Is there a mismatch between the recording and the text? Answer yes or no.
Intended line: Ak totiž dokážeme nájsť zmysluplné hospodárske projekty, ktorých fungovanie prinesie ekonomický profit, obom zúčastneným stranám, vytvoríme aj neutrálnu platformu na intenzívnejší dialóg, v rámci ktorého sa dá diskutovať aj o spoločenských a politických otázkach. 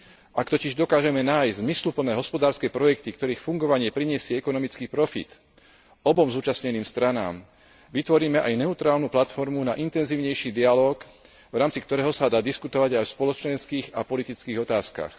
no